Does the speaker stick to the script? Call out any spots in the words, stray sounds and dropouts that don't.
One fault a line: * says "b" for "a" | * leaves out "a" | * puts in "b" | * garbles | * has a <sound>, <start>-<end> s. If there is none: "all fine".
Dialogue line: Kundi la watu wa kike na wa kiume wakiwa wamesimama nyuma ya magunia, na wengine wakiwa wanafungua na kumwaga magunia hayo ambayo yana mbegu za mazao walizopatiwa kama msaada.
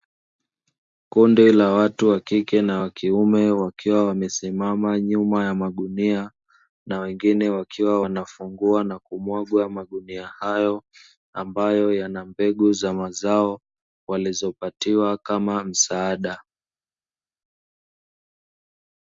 all fine